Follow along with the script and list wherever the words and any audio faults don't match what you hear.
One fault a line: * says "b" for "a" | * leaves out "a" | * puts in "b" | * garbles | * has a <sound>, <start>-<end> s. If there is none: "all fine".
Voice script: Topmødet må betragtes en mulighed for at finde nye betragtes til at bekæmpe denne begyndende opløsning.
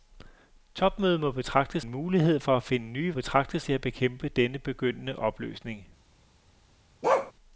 * has a bark, 7.0-7.3 s